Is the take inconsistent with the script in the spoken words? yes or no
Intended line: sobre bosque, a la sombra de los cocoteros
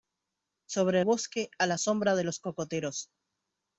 no